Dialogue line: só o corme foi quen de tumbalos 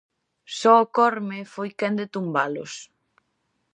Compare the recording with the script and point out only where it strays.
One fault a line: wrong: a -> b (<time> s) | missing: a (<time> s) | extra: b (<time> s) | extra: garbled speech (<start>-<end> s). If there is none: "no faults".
no faults